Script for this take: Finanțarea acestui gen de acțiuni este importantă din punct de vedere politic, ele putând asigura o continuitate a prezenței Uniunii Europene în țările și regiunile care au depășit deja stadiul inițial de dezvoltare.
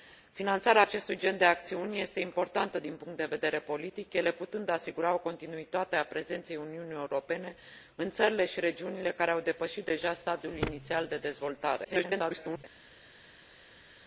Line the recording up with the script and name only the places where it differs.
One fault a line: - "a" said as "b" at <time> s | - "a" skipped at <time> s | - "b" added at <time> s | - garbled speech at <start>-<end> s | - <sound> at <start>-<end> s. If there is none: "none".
- garbled speech at 11.8-12.6 s